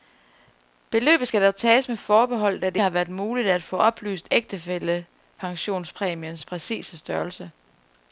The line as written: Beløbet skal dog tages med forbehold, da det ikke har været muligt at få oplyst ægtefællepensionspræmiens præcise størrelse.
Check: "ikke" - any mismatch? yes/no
yes